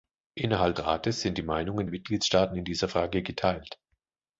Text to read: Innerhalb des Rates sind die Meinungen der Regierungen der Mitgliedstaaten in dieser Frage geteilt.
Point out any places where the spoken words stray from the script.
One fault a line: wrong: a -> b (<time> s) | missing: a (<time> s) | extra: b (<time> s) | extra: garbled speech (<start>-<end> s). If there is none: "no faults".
missing: des (0.8 s)
missing: der Regierungen der (1.9 s)